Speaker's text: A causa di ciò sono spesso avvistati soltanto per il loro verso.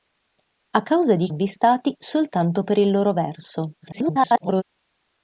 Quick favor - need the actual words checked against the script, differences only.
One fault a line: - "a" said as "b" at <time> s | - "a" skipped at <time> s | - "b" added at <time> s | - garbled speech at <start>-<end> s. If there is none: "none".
- "ciò sono spesso" skipped at 1.3 s
- garbled speech at 3.8-4.6 s